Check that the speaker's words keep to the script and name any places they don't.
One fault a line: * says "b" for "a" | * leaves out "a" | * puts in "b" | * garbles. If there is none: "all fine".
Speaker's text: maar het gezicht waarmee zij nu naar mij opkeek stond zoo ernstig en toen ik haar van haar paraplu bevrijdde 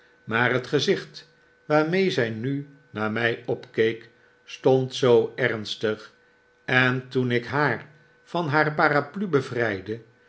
all fine